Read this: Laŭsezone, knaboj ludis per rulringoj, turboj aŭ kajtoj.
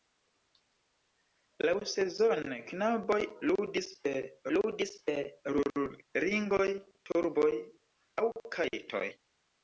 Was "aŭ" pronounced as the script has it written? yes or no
yes